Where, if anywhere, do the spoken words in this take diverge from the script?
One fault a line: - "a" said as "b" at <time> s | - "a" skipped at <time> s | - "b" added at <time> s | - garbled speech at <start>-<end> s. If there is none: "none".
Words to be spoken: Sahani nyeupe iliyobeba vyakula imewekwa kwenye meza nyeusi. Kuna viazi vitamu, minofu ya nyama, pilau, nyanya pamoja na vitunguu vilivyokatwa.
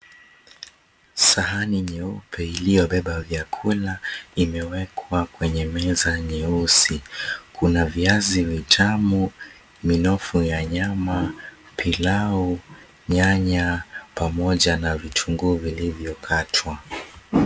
none